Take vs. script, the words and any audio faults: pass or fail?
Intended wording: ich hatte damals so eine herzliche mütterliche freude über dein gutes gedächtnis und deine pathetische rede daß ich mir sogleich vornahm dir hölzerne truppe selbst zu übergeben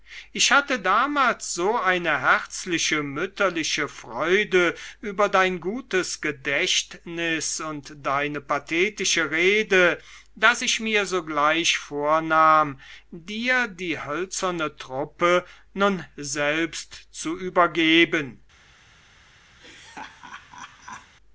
fail